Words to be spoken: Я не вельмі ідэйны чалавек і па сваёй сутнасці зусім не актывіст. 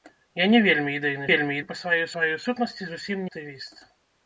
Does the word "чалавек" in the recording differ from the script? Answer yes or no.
yes